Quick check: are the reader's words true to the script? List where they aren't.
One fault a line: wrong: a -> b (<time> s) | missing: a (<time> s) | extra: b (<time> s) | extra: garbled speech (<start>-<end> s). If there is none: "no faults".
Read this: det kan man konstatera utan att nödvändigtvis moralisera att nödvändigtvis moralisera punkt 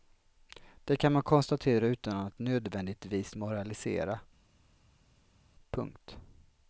missing: att nödvändigtvis moralisera (4.2 s)